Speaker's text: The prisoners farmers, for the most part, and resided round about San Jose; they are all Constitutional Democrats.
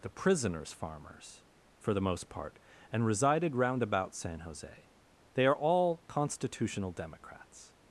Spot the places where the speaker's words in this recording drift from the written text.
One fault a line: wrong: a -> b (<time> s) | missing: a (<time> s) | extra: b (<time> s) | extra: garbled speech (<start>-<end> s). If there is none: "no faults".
no faults